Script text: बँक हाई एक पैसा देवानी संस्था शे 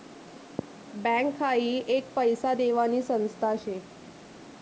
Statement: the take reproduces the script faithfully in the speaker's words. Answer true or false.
true